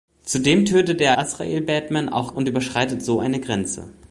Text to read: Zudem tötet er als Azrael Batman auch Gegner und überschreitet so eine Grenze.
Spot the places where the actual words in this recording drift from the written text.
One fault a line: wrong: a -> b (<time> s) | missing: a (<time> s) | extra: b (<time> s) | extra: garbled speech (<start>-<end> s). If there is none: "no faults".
missing: als (1.1 s)
missing: Gegner (2.3 s)